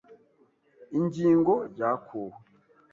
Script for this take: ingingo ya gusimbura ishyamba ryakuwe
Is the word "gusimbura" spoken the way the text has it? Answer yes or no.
no